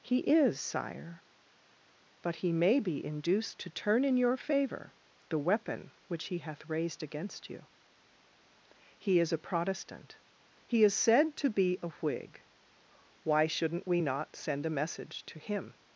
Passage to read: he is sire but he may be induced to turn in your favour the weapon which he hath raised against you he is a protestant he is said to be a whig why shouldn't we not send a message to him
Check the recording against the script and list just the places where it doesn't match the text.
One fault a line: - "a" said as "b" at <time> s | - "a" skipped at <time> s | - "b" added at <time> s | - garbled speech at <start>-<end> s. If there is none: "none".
none